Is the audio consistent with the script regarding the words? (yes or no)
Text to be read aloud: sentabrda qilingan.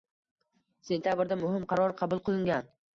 no